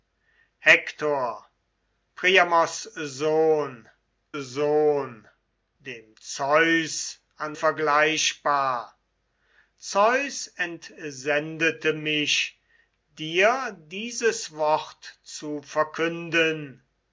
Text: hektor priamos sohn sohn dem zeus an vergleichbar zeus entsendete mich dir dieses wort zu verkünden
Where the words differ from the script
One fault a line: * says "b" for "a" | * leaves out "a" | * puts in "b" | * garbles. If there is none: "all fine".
all fine